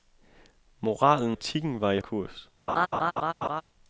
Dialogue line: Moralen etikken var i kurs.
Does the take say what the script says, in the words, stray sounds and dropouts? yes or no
no